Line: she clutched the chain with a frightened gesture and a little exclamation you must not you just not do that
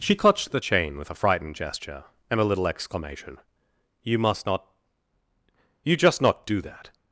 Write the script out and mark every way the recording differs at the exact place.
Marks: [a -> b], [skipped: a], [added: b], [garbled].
she clutched the chain with a frightened gesture and a little exclamation you must not you just not do that